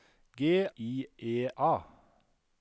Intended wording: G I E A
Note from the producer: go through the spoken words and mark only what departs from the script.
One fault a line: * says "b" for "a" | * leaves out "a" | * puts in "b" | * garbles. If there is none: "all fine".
all fine